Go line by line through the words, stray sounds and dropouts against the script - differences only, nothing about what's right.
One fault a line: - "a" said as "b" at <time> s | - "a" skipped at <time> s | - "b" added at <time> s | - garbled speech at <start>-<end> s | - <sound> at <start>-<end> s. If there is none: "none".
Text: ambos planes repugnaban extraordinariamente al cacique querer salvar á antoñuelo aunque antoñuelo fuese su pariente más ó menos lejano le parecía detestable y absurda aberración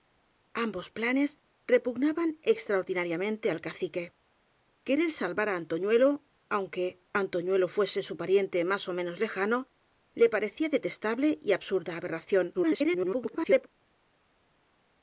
- garbled speech at 12.5-13.7 s